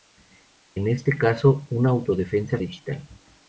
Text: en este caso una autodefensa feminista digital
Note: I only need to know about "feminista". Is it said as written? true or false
false